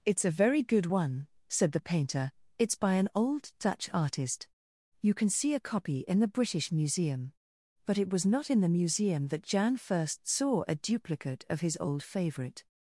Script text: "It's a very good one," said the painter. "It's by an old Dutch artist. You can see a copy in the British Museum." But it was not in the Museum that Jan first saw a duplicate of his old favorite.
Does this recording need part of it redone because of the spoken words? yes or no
no